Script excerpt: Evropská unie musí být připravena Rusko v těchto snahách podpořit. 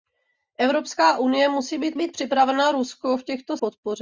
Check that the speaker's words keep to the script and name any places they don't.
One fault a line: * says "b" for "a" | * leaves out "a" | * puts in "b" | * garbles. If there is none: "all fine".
* puts in "být"
* leaves out "snahách"